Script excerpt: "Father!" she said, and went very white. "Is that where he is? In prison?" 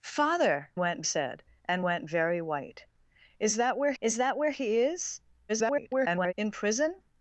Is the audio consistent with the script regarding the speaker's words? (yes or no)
no